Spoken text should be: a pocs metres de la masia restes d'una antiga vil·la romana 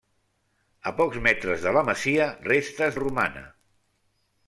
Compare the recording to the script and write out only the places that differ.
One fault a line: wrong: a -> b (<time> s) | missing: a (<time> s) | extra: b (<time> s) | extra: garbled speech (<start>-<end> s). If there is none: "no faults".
missing: d'una antiga vil·la (3.0 s)